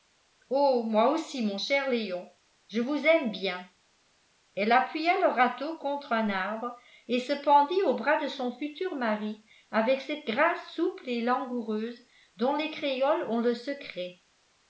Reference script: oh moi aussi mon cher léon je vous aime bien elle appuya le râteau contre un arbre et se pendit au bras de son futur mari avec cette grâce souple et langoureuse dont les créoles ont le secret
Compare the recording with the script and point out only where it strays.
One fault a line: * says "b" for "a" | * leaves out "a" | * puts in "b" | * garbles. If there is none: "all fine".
all fine